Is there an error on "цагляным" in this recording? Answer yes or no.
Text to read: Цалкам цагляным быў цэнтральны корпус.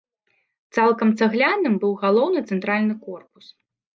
no